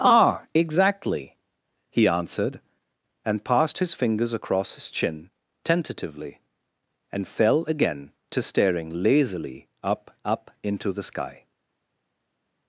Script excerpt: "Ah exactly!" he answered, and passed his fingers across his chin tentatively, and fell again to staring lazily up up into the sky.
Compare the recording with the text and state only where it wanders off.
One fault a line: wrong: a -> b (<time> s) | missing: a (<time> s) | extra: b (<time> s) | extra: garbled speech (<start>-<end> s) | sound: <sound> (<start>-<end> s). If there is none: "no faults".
no faults